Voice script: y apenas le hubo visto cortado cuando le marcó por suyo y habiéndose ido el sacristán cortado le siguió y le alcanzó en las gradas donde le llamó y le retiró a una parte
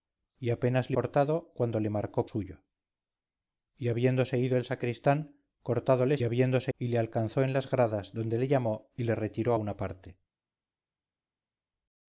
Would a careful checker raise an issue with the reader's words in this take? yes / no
yes